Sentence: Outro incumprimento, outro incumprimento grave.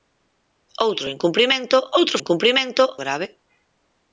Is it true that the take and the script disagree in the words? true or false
false